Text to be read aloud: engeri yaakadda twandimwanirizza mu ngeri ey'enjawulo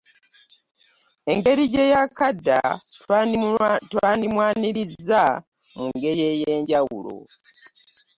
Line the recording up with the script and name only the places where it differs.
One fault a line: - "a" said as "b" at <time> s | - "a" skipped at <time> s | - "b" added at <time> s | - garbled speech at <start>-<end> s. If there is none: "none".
- "gye" added at 1.7 s